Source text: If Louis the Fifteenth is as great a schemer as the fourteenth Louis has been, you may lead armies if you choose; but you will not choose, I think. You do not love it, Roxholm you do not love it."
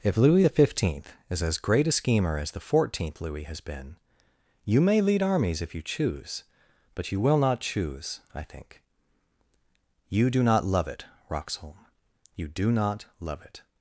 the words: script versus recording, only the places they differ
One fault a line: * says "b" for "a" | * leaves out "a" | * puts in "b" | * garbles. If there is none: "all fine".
all fine